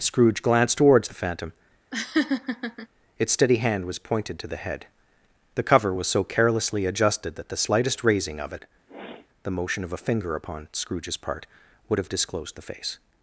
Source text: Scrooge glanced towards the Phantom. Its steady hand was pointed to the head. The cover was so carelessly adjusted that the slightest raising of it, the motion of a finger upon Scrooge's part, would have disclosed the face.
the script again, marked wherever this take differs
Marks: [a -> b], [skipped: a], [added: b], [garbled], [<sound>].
Scrooge glanced towards the Phantom. [laugh] Its steady hand was pointed to the head. The cover was so carelessly adjusted that the slightest raising of it, [sniff] the motion of a finger upon Scrooge's part, would have disclosed the face.